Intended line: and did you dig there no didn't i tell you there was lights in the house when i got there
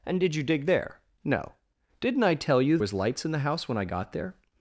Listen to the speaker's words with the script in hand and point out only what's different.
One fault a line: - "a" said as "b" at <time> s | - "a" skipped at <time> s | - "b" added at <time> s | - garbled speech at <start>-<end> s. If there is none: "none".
- "there" skipped at 2.8 s